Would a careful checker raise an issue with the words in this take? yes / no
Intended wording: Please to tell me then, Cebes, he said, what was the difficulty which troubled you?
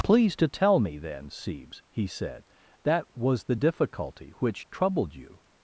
yes